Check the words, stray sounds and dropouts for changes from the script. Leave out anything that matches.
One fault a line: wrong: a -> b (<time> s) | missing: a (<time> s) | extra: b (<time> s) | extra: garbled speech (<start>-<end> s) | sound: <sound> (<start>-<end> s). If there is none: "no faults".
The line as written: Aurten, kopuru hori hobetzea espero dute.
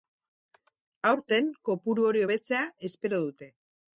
no faults